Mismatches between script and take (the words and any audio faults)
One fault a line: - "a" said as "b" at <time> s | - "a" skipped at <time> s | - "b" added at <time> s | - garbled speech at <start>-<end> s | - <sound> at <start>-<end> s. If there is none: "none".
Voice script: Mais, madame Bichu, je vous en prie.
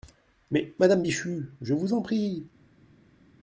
none